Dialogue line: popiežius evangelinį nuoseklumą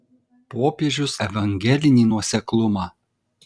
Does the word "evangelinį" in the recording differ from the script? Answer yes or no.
no